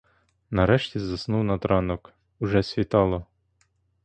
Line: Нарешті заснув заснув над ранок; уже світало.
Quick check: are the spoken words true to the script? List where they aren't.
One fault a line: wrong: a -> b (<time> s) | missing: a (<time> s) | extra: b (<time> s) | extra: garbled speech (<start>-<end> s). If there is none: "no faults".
missing: заснув (1.4 s)